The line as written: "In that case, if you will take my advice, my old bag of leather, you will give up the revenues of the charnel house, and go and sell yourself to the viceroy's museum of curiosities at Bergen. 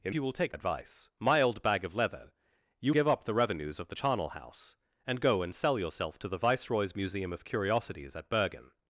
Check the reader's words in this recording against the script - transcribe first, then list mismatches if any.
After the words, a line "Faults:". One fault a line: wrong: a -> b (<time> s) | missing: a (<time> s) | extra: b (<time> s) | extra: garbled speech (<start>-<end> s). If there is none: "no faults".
"In you will take advice, my old bag of leather, you give up the revenues of the charnel house, and go and sell yourself to the viceroy's museum of curiosities at Bergen.
Faults:
missing: that case if (0.1 s)
missing: my (0.6 s)
missing: will (2.9 s)